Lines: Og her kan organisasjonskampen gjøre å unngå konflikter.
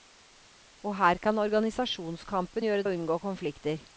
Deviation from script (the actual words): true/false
false